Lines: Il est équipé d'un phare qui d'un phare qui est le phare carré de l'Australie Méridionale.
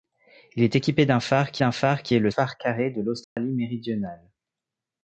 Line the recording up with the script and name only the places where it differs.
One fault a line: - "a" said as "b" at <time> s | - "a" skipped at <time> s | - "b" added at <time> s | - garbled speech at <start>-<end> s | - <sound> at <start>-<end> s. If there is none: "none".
- dropout at 3.2-3.4 s